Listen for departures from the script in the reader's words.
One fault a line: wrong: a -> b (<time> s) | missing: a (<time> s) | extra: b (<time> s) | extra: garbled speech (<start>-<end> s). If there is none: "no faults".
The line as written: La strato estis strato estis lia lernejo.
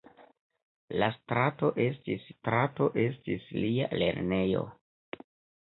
no faults